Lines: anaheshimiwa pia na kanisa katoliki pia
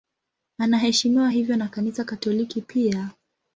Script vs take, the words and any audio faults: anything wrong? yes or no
yes